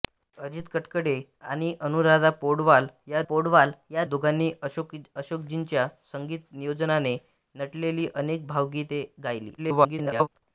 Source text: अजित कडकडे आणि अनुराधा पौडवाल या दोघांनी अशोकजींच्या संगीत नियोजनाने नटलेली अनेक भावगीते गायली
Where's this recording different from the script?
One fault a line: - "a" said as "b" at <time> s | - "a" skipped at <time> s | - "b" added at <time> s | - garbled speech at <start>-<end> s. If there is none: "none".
- "पौडवाल या" added at 3.3 s
- garbled speech at 9.6-10.3 s